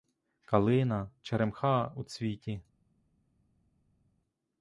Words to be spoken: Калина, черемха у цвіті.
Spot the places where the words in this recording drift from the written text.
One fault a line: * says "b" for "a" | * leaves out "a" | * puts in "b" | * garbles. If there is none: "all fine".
all fine